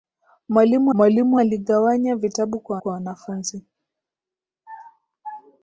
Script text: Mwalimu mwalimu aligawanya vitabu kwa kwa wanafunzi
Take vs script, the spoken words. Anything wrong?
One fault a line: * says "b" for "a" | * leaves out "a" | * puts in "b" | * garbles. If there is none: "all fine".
all fine